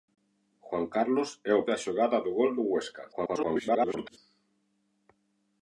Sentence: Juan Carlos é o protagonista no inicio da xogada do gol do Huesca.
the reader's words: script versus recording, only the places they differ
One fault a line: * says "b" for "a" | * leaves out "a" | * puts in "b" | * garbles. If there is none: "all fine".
* leaves out "protagonista no inicio"
* garbles